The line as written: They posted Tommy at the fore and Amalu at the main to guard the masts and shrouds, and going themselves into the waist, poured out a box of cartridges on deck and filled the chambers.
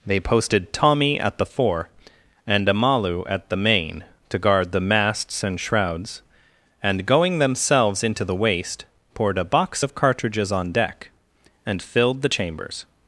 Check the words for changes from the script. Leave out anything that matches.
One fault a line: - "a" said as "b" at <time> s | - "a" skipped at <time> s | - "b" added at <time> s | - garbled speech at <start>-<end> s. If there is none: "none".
- "out" skipped at 9.4 s